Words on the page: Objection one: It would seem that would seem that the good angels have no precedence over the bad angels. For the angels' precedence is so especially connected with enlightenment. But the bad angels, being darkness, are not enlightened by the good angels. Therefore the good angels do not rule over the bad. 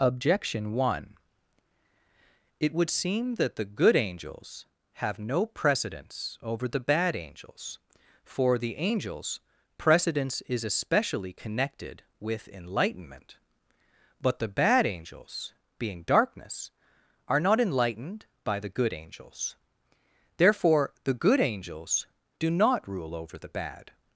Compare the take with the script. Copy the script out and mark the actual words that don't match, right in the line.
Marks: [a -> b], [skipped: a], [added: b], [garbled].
Objection one: It would seem that [skipped: would seem that] the good angels have no precedence over the bad angels. For the angels' precedence is [skipped: so] especially connected with enlightenment. But the bad angels, being darkness, are not enlightened by the good angels. Therefore the good angels do not rule over the bad.